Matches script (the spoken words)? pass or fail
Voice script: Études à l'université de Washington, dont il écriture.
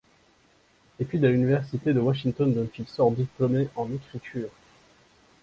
fail